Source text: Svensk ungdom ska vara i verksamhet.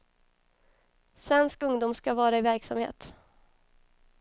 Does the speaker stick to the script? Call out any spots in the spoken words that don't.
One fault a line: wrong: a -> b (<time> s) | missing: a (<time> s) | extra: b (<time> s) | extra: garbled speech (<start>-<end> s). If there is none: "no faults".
no faults